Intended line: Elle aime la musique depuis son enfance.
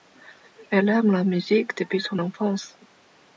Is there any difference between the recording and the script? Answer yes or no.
no